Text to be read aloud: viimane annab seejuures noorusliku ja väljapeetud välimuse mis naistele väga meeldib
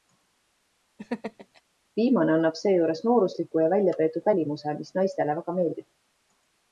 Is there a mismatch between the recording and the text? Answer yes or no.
no